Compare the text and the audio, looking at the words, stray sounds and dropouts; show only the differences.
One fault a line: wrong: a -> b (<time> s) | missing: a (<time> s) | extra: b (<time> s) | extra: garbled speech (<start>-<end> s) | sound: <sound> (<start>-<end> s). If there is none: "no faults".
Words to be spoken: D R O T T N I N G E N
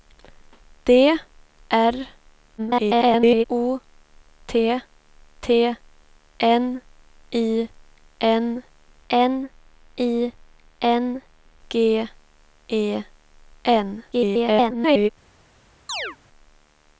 extra: garbled speech (2.6-3.4 s)
extra: N I N (9.1 s)
extra: garbled speech (14.1-15.1 s)
sound: chirp (15.9-16.2 s)